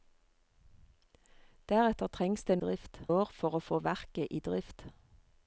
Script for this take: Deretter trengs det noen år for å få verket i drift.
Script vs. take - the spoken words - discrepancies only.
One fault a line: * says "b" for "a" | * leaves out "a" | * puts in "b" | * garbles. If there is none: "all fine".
* says "drift" for "noen"